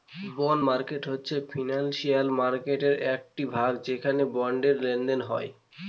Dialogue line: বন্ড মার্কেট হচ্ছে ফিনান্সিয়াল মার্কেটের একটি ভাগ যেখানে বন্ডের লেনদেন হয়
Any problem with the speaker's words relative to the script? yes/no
no